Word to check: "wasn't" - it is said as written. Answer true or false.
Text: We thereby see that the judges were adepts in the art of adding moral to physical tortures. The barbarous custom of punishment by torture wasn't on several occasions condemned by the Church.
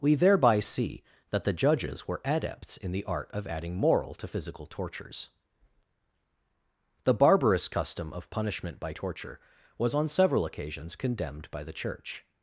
false